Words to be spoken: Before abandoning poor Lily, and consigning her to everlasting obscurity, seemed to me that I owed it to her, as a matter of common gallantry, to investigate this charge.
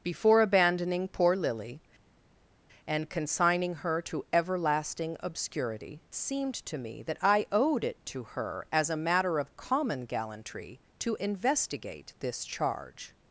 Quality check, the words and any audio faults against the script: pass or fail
pass